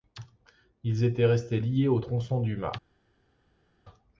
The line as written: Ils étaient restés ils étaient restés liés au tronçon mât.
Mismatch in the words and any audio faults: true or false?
true